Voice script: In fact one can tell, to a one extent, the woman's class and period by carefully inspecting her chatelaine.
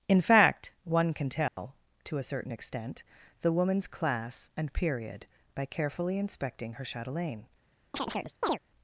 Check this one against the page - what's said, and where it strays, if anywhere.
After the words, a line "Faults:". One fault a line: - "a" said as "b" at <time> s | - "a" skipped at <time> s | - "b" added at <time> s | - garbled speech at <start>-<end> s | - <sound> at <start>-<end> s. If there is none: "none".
In fact one can tell, to a certain extent, the woman's class and period by carefully inspecting her chatelaine.
Faults:
- dropout at 1.5-1.6 s
- "one" said as "certain" at 2.2 s
- chirp at 7.9-8.6 s